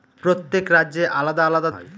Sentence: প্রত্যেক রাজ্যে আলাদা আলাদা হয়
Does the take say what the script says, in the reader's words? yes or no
yes